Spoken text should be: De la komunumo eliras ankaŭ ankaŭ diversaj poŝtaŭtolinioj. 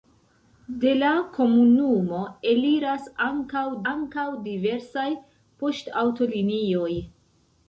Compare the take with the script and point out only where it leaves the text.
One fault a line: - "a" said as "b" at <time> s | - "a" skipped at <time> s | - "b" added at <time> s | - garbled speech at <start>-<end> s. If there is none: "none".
none